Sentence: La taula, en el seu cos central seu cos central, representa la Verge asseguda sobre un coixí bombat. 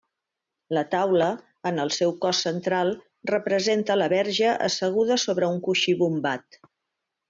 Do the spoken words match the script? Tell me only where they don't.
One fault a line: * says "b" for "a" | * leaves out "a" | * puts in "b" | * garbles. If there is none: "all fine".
* leaves out "seu cos central"